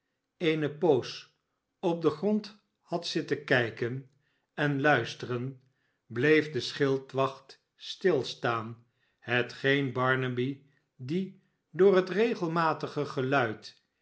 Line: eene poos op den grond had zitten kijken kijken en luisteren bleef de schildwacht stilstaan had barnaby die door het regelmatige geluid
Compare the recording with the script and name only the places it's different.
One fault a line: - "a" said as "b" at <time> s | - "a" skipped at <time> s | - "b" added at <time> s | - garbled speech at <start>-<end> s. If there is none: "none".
- "kijken" skipped at 4.1 s
- "had" said as "hetgeen" at 9.2 s